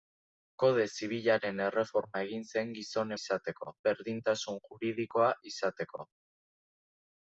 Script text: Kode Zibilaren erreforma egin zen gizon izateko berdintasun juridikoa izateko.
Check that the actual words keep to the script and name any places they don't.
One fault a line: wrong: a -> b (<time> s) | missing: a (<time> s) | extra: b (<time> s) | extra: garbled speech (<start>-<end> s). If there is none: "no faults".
no faults